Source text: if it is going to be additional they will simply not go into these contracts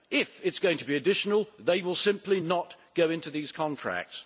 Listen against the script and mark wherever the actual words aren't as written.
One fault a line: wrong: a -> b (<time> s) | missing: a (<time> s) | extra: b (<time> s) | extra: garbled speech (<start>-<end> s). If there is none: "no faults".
no faults